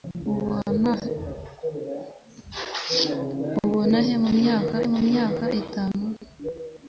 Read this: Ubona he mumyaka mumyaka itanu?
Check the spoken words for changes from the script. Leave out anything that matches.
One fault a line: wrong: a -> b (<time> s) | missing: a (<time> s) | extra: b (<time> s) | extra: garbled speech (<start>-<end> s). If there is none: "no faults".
no faults